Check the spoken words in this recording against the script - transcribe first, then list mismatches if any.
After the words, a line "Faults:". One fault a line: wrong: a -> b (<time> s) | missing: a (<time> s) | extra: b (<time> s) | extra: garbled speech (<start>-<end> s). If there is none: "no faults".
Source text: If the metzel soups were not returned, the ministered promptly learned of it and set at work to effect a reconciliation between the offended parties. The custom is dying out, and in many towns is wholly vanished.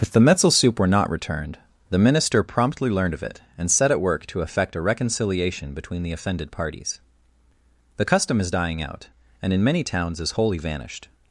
If the metzel soup were not returned, the minister promptly learned of it and set at work to effect a reconciliation between the offended parties. The custom is dying out, and in many towns is wholly vanished.
Faults:
wrong: soups -> soup (0.5 s)
wrong: ministered -> minister (2.0 s)